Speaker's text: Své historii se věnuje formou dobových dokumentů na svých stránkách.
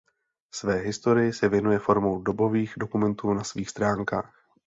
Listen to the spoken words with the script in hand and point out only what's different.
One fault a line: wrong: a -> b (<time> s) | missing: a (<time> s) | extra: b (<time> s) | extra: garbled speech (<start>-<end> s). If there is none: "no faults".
no faults